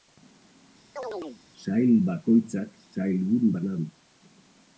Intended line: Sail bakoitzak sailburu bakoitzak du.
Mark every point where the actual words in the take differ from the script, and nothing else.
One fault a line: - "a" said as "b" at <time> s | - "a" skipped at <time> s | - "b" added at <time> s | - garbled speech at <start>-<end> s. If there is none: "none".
- "bakoitzak" said as "bana" at 3.5 s